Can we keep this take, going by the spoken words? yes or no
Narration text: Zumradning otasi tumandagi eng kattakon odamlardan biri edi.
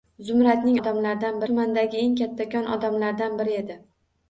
no